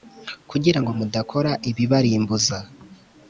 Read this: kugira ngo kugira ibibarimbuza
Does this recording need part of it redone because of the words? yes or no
yes